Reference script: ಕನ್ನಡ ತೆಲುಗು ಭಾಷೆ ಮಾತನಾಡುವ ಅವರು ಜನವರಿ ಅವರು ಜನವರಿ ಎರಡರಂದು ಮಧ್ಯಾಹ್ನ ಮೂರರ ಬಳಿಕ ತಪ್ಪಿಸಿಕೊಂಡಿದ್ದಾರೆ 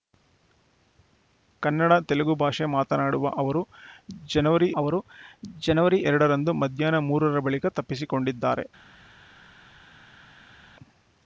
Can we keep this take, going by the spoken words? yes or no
yes